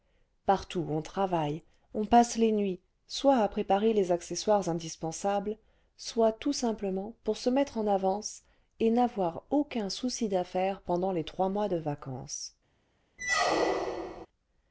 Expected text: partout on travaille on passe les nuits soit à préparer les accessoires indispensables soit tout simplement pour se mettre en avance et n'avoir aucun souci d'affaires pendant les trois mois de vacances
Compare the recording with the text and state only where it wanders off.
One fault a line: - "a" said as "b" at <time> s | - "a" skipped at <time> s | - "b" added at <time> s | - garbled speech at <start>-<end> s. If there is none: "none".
none